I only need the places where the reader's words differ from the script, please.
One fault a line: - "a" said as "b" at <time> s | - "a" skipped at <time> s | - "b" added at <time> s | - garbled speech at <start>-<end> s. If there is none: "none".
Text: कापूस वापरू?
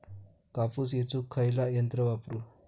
- "येचुक खयला यंत्र" added at 0.9 s